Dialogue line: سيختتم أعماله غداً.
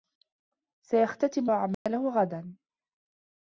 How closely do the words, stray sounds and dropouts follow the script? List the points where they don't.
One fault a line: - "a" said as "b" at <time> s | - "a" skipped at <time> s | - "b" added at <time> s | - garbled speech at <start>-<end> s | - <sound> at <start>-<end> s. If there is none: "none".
- dropout at 1.7-1.9 s